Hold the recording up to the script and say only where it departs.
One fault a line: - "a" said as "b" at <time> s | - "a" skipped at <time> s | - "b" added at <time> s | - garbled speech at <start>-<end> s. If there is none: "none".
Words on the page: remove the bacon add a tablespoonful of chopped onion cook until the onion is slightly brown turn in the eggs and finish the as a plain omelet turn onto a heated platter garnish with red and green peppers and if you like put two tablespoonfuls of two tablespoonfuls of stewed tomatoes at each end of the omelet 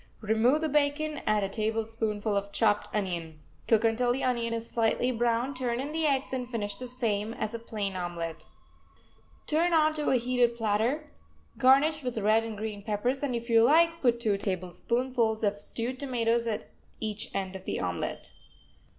- "same" added at 6.9 s
- "two tablespoonfuls of" skipped at 15.6 s